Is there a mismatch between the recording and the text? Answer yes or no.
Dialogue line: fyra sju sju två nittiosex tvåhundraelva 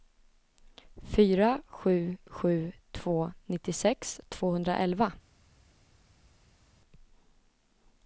no